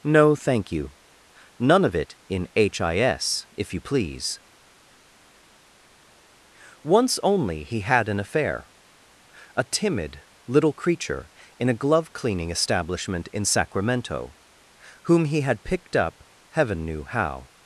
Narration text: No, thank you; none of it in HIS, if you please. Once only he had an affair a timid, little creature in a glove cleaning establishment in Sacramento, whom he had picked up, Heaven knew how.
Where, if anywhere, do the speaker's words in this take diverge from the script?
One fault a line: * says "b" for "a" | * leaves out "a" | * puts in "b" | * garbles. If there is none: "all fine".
all fine